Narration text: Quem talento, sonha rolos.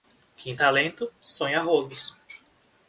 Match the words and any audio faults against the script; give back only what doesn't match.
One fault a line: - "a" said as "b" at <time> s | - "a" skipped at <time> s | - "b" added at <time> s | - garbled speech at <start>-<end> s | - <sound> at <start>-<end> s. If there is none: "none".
none